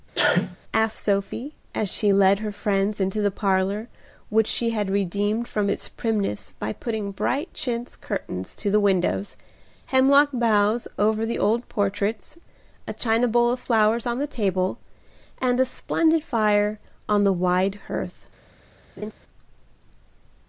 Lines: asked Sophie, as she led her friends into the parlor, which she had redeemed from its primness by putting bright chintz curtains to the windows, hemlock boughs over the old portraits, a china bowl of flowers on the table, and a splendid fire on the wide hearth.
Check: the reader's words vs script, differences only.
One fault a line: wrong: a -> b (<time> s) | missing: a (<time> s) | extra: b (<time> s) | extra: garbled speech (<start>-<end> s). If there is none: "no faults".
no faults